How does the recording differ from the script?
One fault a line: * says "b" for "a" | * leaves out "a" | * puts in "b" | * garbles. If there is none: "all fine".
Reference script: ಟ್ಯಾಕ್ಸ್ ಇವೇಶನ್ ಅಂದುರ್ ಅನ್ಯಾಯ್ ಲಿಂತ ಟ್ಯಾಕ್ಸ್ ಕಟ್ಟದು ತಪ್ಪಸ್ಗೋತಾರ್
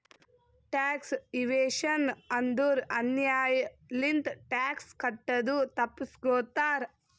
all fine